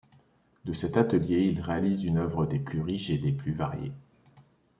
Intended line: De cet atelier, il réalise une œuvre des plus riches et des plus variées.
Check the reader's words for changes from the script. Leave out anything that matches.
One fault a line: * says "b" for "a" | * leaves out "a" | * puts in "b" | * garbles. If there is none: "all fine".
all fine